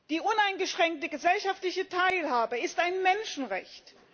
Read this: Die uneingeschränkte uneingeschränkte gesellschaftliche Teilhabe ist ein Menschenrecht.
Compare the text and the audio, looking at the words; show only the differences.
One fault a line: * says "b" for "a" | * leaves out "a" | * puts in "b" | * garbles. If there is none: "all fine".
* leaves out "uneingeschränkte"